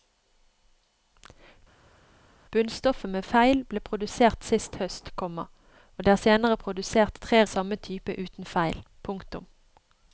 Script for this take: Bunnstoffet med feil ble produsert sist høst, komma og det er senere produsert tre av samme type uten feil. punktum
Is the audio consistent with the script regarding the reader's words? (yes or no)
yes